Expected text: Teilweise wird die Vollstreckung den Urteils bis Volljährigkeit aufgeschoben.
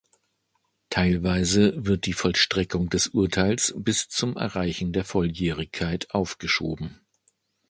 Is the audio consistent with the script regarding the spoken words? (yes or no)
no